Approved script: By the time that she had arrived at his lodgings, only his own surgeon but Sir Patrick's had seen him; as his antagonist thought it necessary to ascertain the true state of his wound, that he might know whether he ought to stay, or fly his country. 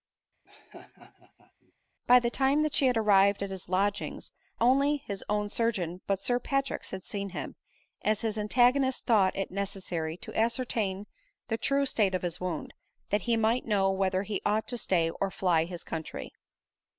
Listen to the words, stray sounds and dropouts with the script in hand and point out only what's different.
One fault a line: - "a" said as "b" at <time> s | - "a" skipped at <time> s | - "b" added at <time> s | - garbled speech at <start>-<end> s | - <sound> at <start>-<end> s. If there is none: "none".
- laugh at 0.4-1.7 s